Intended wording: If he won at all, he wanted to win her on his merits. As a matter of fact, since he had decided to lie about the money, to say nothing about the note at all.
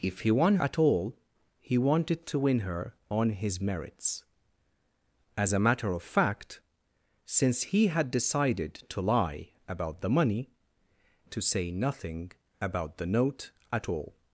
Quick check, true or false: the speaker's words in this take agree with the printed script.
true